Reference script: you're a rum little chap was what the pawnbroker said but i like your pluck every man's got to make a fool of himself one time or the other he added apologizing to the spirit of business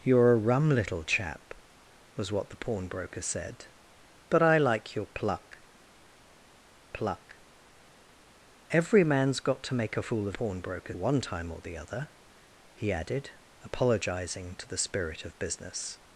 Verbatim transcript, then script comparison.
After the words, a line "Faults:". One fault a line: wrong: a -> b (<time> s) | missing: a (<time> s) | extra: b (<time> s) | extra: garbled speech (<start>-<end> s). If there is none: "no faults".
you're a rum little chap was what the pawnbroker said but i like your pluck pluck every man's got to make a fool of pawnbroker one time or the other he added apologizing to the spirit of business
Faults:
extra: pluck (6.9 s)
wrong: himself -> pawnbroker (10.3 s)